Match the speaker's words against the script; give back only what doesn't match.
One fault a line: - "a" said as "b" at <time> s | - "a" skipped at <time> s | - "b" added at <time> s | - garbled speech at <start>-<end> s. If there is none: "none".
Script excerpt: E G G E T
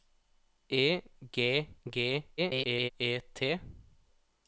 - garbled speech at 2.4-2.9 s